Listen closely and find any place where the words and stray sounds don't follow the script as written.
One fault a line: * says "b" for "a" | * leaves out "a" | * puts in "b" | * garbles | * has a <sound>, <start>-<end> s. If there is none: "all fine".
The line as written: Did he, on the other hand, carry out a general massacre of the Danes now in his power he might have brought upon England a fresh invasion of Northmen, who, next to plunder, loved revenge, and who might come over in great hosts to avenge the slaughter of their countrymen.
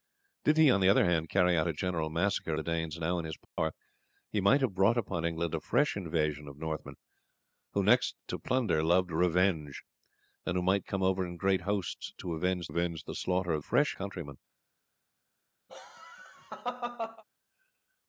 * leaves out "of"
* has a dropout, 3.4-3.6 s
* puts in "avenge"
* says "fresh" for "their"
* has a laugh, 15.7-17.2 s